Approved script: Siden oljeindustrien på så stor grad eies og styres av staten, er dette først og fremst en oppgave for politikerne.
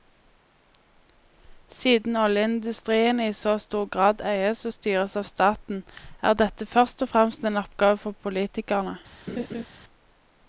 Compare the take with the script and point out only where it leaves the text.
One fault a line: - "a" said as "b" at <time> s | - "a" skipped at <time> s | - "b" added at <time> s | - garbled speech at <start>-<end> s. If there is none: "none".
- "på" said as "i" at 3.2 s